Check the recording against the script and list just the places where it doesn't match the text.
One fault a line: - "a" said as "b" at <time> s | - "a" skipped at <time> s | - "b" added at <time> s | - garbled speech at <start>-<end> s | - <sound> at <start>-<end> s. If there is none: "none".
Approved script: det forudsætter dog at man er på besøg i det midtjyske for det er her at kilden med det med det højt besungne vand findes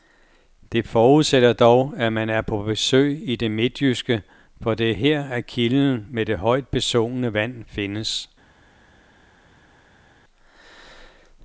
- "med det" skipped at 6.4 s